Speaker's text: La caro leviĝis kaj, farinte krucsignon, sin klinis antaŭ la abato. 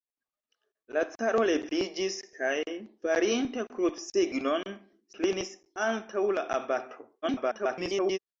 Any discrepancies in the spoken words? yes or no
yes